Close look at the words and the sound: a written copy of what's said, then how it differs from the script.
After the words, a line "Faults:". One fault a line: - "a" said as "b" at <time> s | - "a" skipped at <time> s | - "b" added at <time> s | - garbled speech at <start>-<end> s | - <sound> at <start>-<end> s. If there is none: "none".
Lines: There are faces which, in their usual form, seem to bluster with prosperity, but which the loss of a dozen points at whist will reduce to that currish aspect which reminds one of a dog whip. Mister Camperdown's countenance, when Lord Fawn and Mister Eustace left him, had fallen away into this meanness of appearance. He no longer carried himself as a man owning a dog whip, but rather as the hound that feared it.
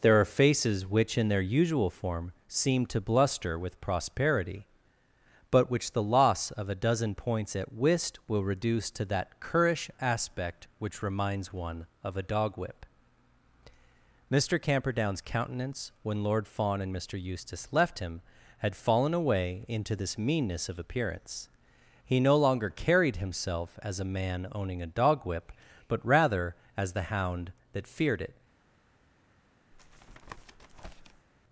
There are faces which, in their usual form, seem to bluster with prosperity, but which the loss of a dozen points at whist will reduce to that currish aspect which reminds one of a dog whip. Mister Camperdown's countenance, when Lord Fawn and Mister Eustace left him, had fallen away into this meanness of appearance. He no longer carried himself as a man owning a dog whip, but rather as the hound that feared it.
Faults:
- tap at 29.7-31.3 s